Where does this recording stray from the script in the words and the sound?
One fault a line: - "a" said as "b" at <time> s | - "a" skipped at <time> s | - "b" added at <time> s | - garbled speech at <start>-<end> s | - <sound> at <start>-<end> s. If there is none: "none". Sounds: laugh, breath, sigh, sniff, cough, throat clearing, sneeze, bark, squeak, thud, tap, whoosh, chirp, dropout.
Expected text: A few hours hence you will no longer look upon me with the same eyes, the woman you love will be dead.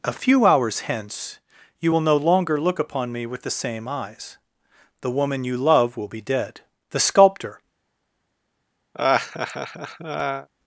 - "The sculptor" added at 6.9 s
- laugh at 8.9-10.5 s